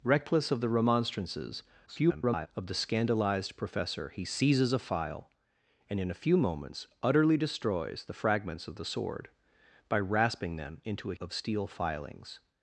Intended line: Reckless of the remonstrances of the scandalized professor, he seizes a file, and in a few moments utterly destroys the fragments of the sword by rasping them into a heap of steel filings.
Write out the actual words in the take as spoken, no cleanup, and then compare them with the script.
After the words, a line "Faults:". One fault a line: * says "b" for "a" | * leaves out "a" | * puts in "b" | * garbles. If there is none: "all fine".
Reckless of the remonstrances [garbled] of the scandalized professor, he seizes a file, and in a few moments utterly destroys the fragments of the sword by rasping them into a of steel filings.
Faults:
* garbles
* leaves out "heap"